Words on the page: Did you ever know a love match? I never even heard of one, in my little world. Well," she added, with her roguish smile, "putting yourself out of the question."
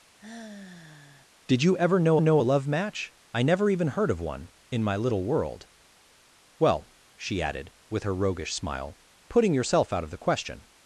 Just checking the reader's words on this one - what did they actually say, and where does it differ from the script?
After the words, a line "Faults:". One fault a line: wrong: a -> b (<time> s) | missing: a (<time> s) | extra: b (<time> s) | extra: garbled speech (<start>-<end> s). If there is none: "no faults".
Did you ever know know a love match? I never even heard of one, in my little world. Well," she added, with her roguish smile, "putting yourself out of the question."
Faults:
extra: know (2.2 s)